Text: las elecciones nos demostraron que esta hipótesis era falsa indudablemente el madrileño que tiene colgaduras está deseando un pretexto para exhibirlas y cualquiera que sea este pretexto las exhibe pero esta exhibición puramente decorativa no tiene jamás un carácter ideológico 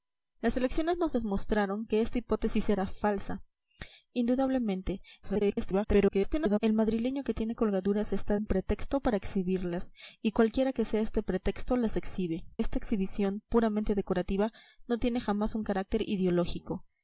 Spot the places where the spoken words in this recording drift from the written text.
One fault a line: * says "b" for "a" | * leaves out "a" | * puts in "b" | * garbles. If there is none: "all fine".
* garbles
* leaves out "deseando"
* leaves out "pero"